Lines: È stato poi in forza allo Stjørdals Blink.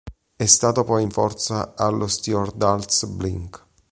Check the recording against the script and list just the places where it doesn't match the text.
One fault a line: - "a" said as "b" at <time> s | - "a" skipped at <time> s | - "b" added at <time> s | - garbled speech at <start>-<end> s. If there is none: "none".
none